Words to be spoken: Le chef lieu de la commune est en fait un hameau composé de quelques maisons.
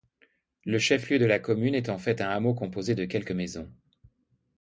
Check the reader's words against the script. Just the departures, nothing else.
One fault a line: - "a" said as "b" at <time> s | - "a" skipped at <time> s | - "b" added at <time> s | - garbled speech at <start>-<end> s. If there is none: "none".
none